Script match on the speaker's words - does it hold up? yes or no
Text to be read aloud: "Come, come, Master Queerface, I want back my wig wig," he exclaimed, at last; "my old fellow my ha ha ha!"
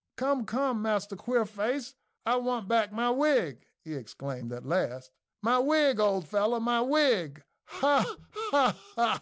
no